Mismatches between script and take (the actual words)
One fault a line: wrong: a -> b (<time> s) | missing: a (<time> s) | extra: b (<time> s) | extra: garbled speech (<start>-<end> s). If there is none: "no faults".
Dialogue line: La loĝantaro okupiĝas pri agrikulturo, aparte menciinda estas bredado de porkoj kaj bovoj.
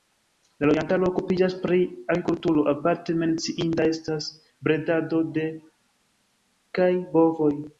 missing: porkoj (5.5 s)